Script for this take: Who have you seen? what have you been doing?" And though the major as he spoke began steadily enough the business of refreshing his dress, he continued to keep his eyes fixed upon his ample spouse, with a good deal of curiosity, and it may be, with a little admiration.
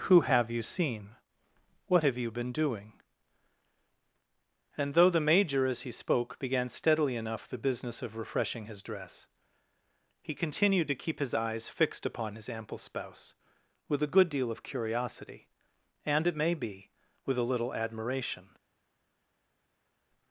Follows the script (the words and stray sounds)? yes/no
yes